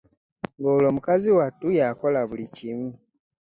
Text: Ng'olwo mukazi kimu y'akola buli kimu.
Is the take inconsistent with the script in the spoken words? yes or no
yes